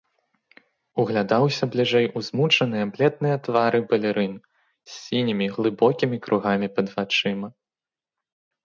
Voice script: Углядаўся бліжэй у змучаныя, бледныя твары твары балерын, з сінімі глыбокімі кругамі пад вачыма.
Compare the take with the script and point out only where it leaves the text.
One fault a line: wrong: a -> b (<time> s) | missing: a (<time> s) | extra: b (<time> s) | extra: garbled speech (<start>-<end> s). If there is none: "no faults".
missing: твары (3.8 s)